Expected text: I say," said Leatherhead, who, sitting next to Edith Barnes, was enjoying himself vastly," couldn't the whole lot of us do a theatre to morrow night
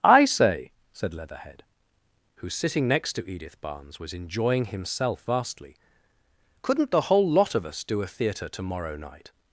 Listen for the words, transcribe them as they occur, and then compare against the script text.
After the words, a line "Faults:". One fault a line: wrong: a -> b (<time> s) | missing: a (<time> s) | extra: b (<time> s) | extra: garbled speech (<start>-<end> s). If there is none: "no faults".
I say," said Leatherhead, who, sitting next to Edith Barnes, was enjoying himself vastly," couldn't the whole lot of us do a theatre to morrow night
Faults:
no faults